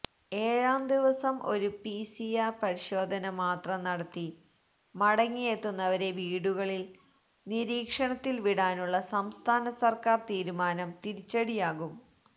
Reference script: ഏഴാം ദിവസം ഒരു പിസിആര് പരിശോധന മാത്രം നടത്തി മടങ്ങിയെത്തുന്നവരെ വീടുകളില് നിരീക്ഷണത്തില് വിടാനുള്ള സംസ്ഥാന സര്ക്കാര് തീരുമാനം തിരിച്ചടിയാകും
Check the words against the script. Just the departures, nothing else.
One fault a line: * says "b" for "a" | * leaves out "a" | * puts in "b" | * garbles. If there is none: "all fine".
all fine